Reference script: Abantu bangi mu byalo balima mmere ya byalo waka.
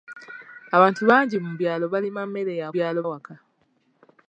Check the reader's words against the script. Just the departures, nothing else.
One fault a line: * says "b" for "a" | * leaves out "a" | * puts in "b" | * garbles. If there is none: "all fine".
all fine